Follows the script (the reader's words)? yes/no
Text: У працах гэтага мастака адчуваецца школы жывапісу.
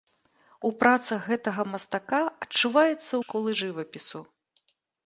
yes